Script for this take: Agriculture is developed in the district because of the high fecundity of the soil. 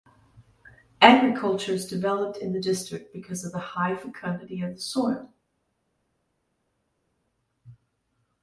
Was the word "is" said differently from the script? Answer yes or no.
no